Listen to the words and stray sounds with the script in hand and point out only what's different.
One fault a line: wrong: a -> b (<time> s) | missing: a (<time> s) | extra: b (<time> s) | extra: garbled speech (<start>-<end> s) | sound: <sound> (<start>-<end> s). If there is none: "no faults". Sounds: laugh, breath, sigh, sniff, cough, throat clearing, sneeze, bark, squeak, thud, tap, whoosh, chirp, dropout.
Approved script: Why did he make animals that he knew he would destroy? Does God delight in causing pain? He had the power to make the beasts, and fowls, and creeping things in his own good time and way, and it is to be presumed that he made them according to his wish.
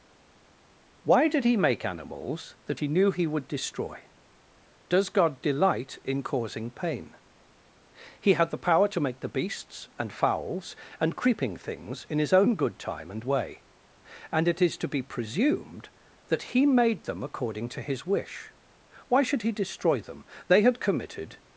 extra: Why should he destroy them They had committed (19.1 s)